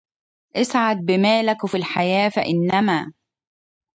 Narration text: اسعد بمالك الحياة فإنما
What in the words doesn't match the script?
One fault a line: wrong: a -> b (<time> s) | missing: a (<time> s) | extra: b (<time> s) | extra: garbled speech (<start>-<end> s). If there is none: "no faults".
extra: في (1.7 s)